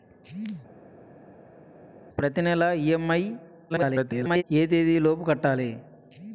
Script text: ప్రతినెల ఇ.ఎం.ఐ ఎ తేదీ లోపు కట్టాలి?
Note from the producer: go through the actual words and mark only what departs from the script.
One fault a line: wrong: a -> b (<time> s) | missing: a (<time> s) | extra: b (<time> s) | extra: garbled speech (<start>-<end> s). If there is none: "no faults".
extra: garbled speech (3.7-4.4 s)